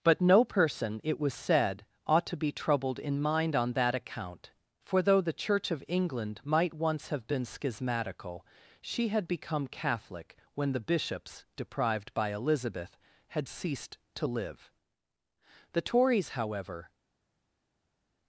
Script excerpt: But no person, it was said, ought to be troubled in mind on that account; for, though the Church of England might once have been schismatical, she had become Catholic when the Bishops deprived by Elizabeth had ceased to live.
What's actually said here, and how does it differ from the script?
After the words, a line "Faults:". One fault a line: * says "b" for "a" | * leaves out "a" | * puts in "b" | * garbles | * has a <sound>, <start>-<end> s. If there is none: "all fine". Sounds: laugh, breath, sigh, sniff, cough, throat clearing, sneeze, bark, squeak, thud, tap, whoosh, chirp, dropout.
But no person, it was said, ought to be troubled in mind on that account; for, though the Church of England might once have been schismatical, she had become Catholic when the Bishops deprived by Elizabeth had ceased to live. The Tories, however
Faults:
* puts in "The Tories however"